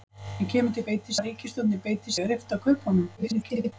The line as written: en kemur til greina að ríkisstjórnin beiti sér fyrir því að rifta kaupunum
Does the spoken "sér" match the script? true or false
false